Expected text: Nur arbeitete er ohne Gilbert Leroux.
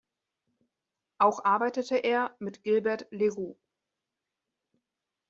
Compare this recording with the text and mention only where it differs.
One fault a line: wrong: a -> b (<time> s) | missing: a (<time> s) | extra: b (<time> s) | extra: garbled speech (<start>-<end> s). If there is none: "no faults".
wrong: Nur -> Auch (1.2 s)
wrong: ohne -> mit (2.4 s)